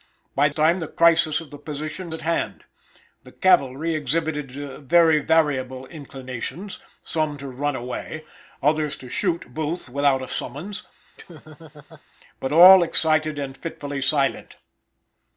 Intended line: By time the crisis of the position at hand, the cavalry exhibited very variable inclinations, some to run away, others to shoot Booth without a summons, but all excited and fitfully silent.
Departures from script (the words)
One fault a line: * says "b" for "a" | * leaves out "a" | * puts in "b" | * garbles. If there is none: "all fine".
all fine